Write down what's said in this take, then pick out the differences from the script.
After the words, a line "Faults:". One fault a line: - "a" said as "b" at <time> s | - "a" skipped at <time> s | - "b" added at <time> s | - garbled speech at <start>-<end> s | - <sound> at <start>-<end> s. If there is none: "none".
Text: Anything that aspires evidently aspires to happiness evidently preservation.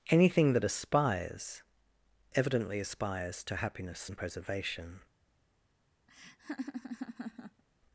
Anything that aspires evidently aspires to happiness and preservation.
Faults:
- "evidently" said as "and" at 4.1 s
- laugh at 6.1-7.6 s